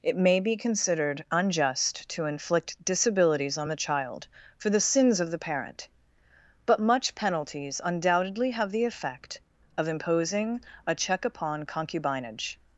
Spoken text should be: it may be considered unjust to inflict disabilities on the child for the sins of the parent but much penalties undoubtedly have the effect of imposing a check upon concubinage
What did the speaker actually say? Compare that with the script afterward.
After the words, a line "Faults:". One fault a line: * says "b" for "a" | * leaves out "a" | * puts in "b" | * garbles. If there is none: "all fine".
it may be considered unjust to inflict disabilities on the child for the sins of the parent but much penalties undoubtedly have the effect of imposing a check upon concubinage
Faults:
all fine